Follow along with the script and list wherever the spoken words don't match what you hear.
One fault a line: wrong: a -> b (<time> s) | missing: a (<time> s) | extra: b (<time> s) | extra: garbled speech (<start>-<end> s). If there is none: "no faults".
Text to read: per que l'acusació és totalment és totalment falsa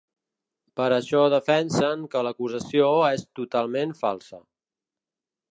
extra: això defensen (0.9 s)
missing: és totalment (4.0 s)